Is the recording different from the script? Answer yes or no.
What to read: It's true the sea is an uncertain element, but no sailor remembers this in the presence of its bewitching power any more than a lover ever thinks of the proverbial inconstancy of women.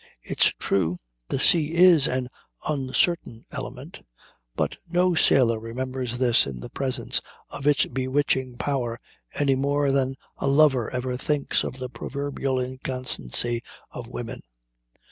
no